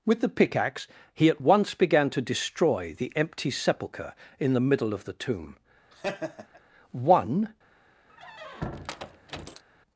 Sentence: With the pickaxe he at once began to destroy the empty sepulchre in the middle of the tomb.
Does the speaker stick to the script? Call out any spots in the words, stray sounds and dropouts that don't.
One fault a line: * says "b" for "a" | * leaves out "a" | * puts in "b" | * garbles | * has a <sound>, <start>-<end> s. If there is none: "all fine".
* has a laugh, 5.9-6.6 s
* puts in "One"
* has a squeak, 8.1-9.6 s